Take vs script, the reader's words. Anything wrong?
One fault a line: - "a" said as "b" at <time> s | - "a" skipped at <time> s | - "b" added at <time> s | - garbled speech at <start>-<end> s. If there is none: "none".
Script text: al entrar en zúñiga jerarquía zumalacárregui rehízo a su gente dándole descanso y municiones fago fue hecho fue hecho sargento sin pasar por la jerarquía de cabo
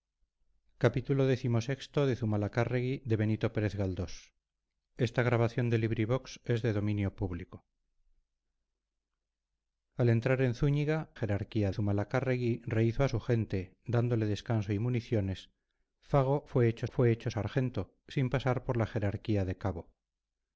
none